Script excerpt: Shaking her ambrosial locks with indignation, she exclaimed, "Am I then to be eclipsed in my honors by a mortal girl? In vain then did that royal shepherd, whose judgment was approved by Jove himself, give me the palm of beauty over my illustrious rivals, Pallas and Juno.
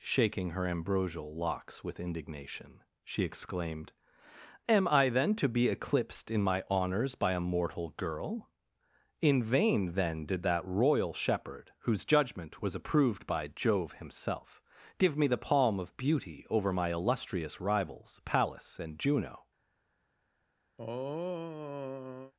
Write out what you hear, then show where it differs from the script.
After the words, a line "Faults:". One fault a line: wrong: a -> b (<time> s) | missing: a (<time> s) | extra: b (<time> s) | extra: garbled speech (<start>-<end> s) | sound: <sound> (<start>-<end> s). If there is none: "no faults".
Shaking her ambrosial locks with indignation, she exclaimed, "Am I then to be eclipsed in my honors by a mortal girl? In vain then did that royal shepherd, whose judgment was approved by Jove himself, give me the palm of beauty over my illustrious rivals, Pallas and Juno.
Faults:
sound: throat clearing (20.8-22.3 s)